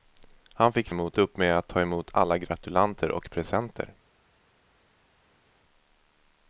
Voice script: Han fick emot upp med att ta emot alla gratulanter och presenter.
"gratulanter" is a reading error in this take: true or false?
false